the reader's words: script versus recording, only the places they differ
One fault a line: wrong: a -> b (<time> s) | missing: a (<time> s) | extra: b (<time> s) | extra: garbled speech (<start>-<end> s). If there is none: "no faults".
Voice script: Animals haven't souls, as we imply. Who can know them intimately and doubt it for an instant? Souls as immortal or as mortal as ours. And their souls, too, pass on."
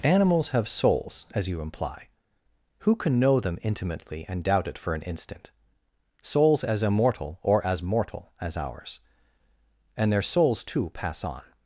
wrong: haven't -> have (0.5 s)
wrong: we -> you (1.5 s)